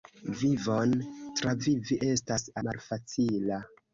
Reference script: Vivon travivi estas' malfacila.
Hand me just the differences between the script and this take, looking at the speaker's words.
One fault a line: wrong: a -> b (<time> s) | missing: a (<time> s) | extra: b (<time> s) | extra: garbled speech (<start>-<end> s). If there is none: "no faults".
no faults